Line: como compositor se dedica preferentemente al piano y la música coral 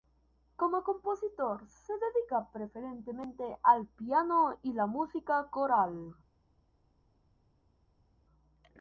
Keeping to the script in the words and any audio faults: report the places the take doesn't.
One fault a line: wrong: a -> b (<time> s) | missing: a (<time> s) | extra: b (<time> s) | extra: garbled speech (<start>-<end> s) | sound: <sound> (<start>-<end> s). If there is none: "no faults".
no faults